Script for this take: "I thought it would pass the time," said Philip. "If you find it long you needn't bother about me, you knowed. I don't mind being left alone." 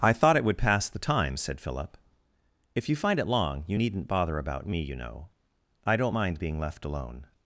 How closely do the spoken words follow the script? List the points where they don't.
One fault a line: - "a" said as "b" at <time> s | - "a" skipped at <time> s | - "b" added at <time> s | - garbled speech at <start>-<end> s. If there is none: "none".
- "knowed" said as "know" at 4.9 s